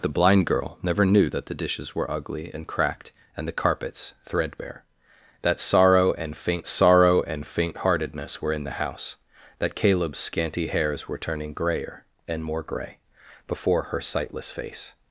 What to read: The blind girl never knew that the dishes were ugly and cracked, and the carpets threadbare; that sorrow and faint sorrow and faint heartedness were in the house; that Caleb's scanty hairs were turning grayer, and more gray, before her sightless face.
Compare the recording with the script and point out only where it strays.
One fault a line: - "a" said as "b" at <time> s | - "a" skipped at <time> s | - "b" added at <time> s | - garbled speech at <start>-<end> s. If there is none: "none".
none